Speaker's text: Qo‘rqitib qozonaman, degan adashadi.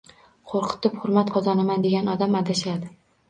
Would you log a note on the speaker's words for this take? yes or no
yes